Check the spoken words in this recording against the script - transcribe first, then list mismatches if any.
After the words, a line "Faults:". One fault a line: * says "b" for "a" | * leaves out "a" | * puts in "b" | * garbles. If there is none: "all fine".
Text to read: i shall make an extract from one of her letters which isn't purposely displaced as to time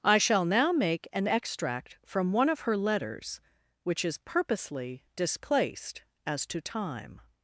i shall now make an extract from one of her letters which is purposely displaced as to time
Faults:
* puts in "now"
* says "is" for "isn't"